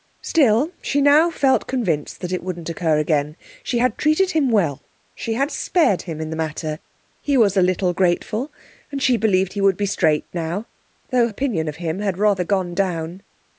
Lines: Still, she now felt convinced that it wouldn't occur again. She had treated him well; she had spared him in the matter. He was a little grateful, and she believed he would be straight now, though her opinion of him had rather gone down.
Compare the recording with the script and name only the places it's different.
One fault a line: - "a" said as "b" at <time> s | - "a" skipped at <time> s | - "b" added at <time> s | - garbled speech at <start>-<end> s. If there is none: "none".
- "her" skipped at 11.3 s